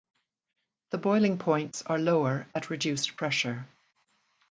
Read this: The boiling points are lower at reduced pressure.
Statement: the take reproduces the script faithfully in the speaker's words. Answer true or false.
true